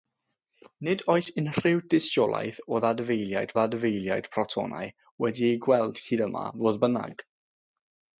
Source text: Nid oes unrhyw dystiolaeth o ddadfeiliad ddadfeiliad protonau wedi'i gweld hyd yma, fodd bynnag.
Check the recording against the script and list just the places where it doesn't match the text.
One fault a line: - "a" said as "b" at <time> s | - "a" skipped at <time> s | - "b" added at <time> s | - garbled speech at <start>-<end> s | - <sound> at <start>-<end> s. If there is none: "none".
none